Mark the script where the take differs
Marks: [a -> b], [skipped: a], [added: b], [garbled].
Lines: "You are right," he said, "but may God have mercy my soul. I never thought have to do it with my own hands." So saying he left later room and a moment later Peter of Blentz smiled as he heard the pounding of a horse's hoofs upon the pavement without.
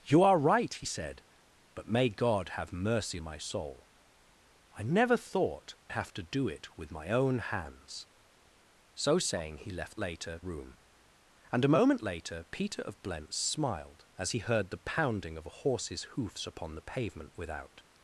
"You are right," he said, "but may God have mercy my soul. I never thought have to do it with my own hands." So saying he left later room and a moment later Peter of Blentz smiled as he heard the pounding of a horse's hoofs upon the pavement without.